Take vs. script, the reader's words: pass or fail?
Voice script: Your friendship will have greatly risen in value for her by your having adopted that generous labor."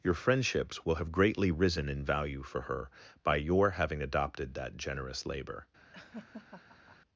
fail